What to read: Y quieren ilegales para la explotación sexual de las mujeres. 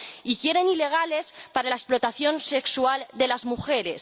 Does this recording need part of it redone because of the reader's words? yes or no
no